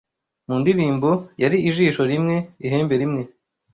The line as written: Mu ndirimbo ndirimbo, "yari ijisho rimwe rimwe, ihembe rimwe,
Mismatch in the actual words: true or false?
true